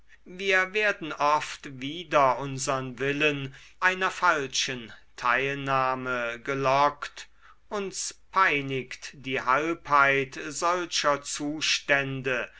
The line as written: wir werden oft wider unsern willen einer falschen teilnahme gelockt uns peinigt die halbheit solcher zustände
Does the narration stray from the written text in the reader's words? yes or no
no